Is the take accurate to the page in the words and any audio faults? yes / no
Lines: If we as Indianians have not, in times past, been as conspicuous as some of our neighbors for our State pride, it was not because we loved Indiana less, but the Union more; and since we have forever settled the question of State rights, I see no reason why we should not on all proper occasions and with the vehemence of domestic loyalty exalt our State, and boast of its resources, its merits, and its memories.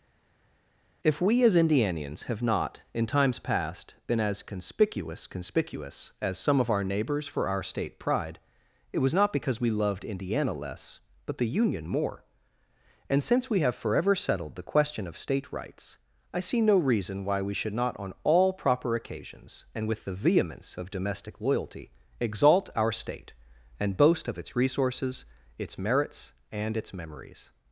no